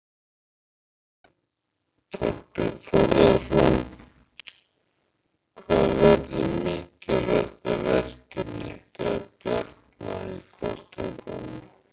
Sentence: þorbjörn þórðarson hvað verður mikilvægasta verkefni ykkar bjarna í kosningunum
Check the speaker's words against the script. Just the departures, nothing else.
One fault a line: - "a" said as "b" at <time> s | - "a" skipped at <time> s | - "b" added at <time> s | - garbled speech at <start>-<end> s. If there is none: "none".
none